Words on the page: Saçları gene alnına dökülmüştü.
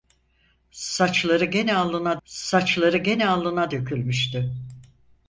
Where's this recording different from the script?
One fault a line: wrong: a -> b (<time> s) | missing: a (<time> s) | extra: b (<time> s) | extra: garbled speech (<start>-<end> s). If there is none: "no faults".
extra: saçları gene alnına (2.2 s)